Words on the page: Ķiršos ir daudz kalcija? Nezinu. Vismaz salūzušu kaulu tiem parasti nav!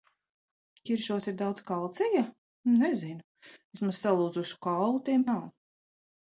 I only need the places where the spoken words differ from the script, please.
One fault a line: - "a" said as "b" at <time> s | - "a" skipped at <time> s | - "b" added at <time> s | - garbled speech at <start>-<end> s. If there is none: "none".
- "parasti" skipped at 5.3 s